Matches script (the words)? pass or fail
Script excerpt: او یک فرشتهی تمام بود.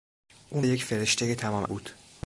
pass